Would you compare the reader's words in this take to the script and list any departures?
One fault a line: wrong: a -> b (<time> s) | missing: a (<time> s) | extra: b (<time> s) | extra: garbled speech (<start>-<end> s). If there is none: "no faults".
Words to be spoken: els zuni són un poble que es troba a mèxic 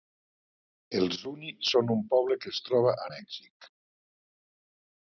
no faults